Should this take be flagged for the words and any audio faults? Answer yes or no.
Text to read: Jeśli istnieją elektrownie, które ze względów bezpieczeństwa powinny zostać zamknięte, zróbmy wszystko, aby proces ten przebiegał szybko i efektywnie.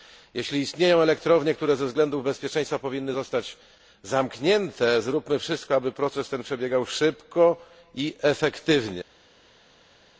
no